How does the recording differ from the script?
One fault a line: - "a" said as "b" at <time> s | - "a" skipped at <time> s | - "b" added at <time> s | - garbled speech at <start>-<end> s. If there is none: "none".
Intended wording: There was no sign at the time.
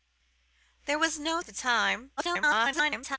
- "sign" skipped at 1.4 s
- garbled speech at 2.2-3.2 s